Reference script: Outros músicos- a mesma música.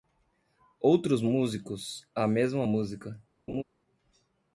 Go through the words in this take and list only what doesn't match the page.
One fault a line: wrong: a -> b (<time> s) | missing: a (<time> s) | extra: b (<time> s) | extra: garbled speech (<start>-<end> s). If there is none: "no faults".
no faults